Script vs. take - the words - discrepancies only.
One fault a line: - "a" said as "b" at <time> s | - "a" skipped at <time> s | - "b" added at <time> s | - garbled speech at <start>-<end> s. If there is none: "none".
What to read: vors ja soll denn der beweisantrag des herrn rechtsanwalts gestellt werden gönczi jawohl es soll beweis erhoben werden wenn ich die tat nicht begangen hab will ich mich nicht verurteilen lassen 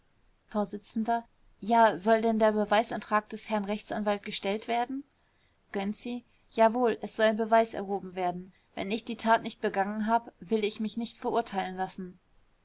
none